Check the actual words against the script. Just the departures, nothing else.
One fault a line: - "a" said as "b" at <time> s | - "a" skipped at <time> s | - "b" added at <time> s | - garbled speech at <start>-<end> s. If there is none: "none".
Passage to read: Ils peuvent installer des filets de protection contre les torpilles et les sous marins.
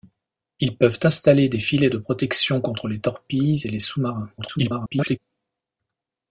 - garbled speech at 4.4-5.2 s